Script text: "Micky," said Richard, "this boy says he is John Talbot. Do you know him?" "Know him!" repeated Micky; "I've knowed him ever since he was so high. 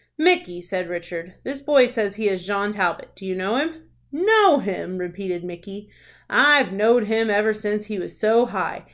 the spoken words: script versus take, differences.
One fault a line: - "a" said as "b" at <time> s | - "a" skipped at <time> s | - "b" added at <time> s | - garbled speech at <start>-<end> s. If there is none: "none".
none